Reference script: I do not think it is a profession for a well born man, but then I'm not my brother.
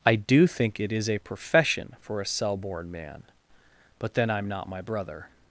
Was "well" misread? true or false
true